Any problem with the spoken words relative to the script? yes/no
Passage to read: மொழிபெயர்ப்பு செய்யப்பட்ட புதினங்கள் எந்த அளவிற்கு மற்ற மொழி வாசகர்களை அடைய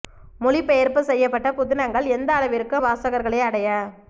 yes